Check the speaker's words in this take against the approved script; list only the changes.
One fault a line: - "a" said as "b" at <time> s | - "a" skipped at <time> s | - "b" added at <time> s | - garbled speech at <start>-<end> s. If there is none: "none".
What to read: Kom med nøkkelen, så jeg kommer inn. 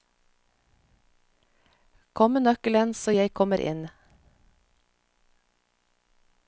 none